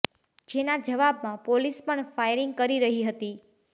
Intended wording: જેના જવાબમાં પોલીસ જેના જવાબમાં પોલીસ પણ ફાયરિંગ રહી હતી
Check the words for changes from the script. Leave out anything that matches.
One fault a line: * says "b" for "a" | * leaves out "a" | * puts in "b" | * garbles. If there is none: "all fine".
* leaves out "જેના જવાબમાં પોલીસ"
* puts in "કરી"